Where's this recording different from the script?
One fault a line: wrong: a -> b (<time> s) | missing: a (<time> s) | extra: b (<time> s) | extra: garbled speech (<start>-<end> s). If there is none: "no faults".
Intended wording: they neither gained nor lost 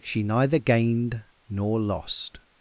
wrong: they -> she (0.0 s)